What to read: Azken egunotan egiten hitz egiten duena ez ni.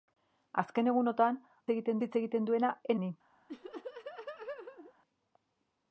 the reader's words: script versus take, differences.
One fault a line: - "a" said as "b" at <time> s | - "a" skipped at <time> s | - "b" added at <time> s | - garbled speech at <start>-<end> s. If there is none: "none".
none